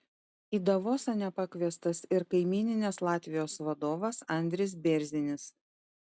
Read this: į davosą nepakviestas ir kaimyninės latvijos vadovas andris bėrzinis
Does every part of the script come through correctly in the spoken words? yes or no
yes